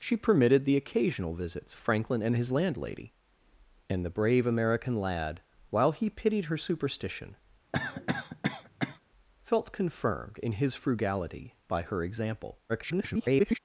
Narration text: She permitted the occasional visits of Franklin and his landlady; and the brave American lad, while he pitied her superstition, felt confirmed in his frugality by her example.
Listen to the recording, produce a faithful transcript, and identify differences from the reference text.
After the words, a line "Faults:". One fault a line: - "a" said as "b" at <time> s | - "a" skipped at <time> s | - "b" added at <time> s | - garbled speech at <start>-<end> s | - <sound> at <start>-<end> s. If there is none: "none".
She permitted the occasional visits Franklin and his landlady; and the brave American lad, while he pitied her superstition, felt confirmed in his frugality by her example. [garbled]
Faults:
- "of" skipped at 1.8 s
- cough at 7.7-9.0 s
- garbled speech at 12.7-13.6 s